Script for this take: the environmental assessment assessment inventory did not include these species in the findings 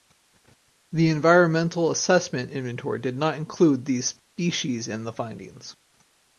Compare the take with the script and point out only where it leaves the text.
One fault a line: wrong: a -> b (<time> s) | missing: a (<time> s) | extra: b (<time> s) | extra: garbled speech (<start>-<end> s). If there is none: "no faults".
missing: assessment (2.5 s)